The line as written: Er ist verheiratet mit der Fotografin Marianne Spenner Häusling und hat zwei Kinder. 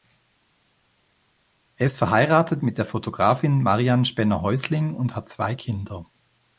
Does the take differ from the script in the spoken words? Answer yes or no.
no